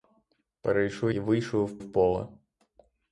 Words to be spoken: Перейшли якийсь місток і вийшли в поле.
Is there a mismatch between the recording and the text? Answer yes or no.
yes